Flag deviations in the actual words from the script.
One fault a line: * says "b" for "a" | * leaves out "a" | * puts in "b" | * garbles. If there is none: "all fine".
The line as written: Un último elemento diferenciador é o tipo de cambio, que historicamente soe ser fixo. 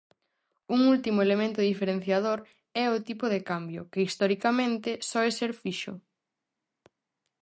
all fine